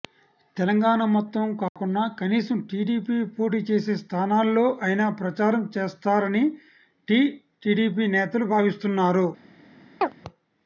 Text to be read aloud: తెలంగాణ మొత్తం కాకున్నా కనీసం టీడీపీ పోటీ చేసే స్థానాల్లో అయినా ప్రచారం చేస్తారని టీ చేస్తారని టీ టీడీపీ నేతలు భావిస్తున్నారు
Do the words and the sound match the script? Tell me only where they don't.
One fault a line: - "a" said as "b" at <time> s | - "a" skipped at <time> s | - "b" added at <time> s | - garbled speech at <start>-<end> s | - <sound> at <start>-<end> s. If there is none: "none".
- dropout at 1.7-1.8 s
- "చేస్తారని టీ" skipped at 7.2 s
- chirp at 10.0-10.1 s